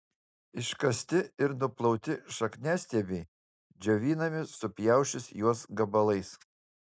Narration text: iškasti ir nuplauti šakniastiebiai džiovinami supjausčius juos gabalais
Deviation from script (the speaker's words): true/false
false